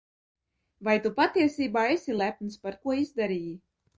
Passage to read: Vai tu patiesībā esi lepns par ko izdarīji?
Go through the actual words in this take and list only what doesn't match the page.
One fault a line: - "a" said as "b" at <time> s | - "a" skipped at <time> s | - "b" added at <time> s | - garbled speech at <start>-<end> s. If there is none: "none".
none